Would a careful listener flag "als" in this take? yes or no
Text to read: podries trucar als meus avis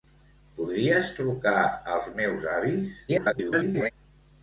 no